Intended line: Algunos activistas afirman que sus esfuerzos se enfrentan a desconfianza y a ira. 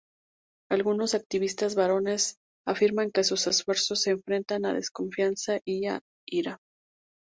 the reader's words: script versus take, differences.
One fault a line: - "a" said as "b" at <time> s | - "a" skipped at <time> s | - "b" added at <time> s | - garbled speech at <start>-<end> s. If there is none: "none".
- "varones" added at 1.8 s